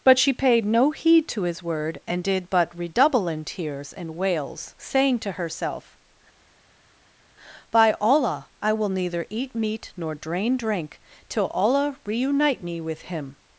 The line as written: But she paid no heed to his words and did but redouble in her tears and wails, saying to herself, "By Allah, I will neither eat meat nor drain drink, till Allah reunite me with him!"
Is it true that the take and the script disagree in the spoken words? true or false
true